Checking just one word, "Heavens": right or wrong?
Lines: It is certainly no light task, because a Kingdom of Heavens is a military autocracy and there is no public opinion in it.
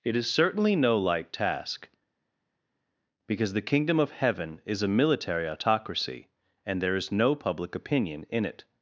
wrong